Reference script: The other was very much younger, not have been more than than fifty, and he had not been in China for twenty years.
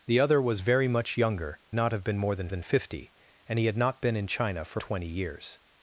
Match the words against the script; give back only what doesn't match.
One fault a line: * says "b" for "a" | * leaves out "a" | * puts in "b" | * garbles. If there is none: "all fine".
all fine